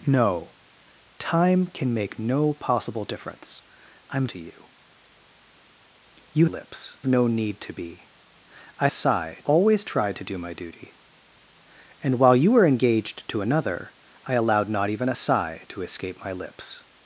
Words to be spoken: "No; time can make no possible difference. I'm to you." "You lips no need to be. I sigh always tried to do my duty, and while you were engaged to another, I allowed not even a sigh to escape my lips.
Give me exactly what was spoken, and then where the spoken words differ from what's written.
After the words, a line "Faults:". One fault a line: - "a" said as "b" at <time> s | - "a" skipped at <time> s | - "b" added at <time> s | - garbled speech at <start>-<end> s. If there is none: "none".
"No; time can make no possible difference. I'm to you." "You lips no need to be. I sigh always tried to do my duty, and while you were engaged to another, I allowed not even a sigh to escape my lips.
Faults:
none